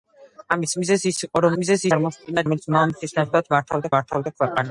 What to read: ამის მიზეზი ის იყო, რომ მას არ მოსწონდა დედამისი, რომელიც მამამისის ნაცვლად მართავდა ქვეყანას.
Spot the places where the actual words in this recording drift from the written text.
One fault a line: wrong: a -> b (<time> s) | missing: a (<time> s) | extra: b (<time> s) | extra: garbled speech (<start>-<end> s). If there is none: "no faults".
wrong: მას -> მიზეზი (1.6 s)
missing: დედამისი (2.5 s)
extra: მართავდა (4.0 s)